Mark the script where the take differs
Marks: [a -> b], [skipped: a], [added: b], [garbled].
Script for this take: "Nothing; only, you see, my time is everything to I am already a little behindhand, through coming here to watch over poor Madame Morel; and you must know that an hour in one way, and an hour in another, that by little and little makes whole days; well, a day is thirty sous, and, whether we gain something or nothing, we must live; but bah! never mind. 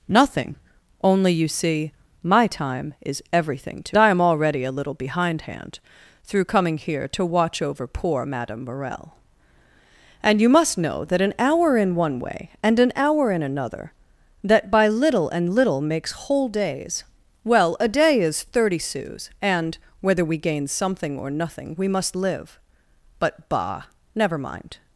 "Nothing; only, you see, my time is everything to I am already a little behindhand, through coming here to watch over poor Madame Morel; and you must know that an hour in one way, and an hour in another, that by little and little makes whole days; well, a day is thirty sous, and, whether we gain something or nothing, we must live; but bah! never mind.